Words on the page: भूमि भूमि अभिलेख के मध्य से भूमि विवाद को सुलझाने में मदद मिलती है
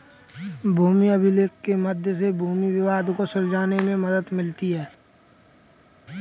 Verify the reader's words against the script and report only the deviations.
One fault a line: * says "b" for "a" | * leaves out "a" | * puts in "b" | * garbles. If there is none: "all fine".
* leaves out "भूमि"